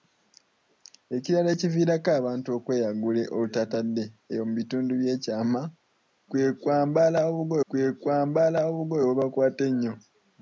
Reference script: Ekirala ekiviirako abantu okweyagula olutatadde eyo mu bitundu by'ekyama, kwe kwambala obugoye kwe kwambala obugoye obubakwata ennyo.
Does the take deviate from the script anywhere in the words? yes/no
no